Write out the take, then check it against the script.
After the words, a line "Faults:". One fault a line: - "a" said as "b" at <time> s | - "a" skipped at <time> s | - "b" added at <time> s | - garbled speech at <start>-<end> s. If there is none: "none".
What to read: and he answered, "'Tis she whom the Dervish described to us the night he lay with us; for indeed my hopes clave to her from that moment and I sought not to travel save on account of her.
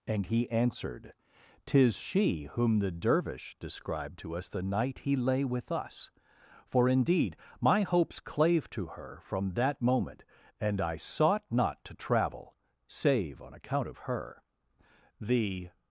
and he answered, "'Tis she whom the Dervish described to us the night he lay with us; for indeed my hopes clave to her from that moment and I sought not to travel save on account of her. The
Faults:
- "The" added at 15.2 s